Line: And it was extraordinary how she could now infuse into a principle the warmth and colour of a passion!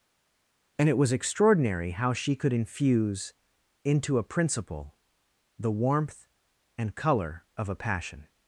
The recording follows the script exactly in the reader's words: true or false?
false